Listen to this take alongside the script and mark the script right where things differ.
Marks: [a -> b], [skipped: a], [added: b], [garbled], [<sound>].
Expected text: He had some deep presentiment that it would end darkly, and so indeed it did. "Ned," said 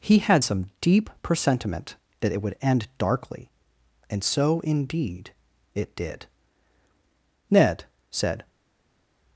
He had some deep presentiment that it would end darkly, and so indeed it did. "Ned," said